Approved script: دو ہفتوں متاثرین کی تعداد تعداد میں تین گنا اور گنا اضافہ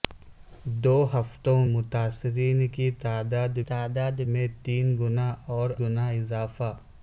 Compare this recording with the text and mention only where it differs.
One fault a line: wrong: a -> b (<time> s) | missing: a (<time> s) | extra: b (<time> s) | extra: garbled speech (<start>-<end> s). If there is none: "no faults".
no faults